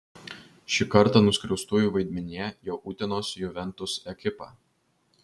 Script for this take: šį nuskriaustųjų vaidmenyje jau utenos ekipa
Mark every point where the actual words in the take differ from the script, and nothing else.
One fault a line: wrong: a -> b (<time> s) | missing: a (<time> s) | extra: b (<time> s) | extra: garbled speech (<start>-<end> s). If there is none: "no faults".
extra: kartą (0.9 s)
extra: juventus (3.4 s)